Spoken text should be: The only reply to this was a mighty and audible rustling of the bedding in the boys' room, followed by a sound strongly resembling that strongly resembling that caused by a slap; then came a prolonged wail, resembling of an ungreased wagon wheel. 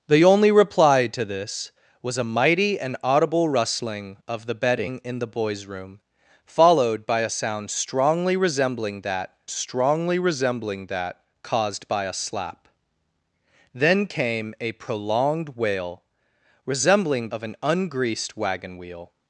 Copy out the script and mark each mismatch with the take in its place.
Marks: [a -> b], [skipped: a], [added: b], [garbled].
The only reply to this was a mighty and audible rustling of the bedding in the boys' room, followed by a sound strongly resembling that strongly resembling that caused by a slap; then came a prolonged wail, resembling of an ungreased wagon wheel.